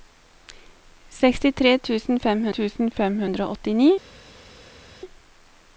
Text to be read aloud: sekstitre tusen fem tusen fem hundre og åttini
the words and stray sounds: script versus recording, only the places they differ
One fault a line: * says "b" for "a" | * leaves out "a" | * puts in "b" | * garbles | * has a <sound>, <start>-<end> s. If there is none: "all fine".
all fine